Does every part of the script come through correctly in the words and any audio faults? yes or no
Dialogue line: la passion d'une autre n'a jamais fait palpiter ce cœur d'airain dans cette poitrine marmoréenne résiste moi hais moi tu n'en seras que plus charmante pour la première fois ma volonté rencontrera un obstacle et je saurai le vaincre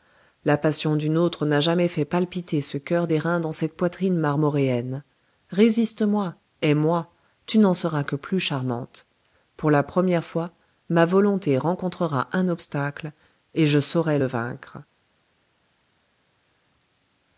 yes